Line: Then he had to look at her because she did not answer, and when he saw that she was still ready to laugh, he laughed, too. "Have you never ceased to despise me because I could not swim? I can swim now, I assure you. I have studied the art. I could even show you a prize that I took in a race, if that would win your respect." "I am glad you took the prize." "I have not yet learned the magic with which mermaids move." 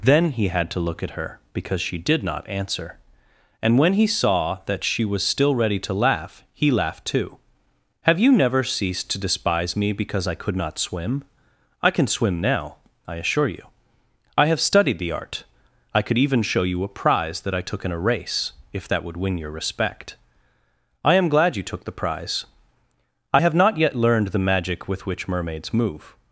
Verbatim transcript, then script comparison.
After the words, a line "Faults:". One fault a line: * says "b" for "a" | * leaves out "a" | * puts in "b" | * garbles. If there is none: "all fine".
Then he had to look at her because she did not answer, and when he saw that she was still ready to laugh, he laughed, too. "Have you never ceased to despise me because I could not swim? I can swim now, I assure you. I have studied the art. I could even show you a prize that I took in a race, if that would win your respect." "I am glad you took the prize." "I have not yet learned the magic with which mermaids move."
Faults:
all fine